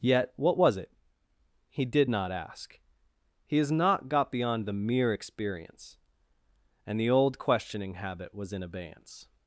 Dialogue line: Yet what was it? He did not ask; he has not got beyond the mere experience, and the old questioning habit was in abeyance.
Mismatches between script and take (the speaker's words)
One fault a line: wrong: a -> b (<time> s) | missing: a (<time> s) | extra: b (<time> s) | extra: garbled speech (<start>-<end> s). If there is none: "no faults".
no faults